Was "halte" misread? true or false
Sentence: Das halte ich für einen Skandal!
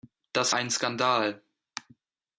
true